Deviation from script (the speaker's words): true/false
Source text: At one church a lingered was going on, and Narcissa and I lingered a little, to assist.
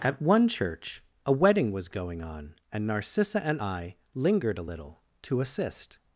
true